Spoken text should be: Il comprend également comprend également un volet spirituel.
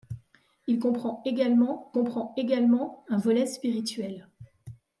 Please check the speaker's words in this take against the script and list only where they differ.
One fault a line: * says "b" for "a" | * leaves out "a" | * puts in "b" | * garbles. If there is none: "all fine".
all fine